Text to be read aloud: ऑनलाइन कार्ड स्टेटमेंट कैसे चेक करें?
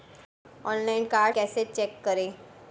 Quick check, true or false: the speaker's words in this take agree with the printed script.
false